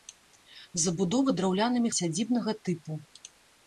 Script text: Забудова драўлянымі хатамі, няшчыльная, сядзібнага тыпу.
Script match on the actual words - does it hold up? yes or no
no